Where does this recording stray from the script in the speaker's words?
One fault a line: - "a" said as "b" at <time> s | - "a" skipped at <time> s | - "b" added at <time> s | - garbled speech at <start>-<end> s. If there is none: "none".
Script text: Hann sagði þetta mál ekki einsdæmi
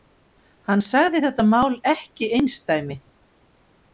none